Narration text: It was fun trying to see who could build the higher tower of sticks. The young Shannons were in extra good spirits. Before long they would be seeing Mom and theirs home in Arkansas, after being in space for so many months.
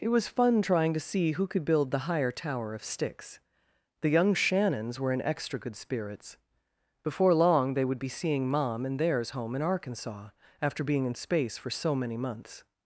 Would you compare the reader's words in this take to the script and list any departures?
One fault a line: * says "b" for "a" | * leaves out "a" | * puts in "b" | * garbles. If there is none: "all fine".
all fine